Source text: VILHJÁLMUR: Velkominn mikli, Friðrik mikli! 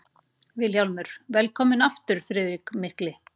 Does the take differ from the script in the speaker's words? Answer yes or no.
yes